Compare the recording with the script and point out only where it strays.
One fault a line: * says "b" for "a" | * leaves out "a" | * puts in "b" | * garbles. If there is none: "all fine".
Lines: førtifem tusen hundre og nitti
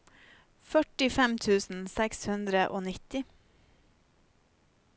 * puts in "seks"